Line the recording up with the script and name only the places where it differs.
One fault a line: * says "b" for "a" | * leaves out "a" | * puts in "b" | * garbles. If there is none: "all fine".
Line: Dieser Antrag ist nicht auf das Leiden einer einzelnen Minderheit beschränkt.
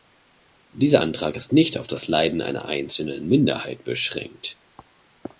all fine